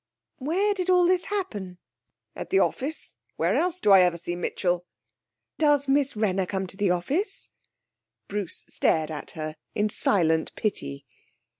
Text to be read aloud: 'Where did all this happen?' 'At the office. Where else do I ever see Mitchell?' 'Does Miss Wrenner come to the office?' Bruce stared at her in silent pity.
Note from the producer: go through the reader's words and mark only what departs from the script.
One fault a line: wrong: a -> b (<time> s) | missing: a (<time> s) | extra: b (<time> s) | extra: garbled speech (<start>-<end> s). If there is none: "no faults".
no faults